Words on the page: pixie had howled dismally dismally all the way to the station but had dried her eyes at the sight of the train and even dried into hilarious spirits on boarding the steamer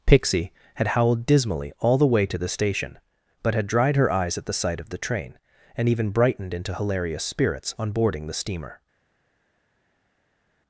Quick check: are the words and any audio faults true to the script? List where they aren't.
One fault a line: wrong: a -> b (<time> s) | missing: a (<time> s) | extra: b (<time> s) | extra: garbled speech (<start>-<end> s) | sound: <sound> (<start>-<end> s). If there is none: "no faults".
missing: dismally (1.7 s)
wrong: dried -> brightened (6.1 s)